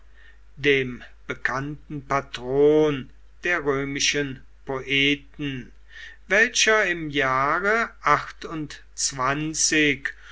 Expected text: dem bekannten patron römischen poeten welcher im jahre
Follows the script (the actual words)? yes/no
no